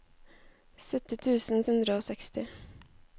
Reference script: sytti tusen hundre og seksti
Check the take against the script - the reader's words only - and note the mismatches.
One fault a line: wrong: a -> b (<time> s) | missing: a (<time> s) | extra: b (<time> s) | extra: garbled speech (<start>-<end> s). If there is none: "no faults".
no faults